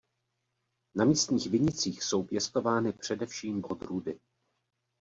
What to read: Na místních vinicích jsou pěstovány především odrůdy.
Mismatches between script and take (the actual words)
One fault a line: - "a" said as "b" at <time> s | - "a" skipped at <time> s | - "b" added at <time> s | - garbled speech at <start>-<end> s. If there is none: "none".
none